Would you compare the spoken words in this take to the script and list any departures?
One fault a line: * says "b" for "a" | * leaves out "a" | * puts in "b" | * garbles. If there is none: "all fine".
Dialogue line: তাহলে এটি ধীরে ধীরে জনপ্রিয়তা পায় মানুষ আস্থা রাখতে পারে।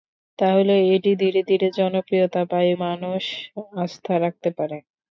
all fine